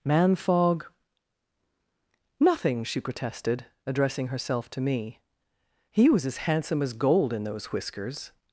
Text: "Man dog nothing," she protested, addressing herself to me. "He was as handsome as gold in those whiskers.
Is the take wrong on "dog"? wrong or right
wrong